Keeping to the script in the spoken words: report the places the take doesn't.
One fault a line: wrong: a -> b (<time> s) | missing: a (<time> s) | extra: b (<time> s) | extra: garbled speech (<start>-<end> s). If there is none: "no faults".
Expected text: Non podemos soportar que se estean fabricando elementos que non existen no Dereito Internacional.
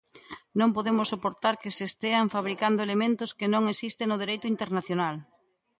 no faults